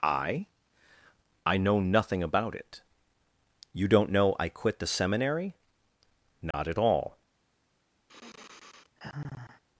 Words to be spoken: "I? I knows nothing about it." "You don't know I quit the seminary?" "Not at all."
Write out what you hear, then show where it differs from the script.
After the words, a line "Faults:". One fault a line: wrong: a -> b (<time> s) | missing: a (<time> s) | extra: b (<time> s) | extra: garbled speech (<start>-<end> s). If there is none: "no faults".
"I? I know nothing about it." "You don't know I quit the seminary?" "Not at all."
Faults:
wrong: knows -> know (1.6 s)